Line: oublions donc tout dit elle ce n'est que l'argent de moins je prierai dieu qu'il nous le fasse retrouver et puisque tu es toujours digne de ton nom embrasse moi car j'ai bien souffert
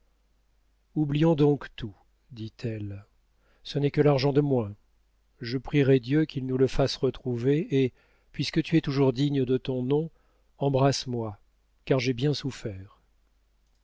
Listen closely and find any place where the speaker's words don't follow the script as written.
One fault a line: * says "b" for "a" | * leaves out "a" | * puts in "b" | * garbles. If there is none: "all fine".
all fine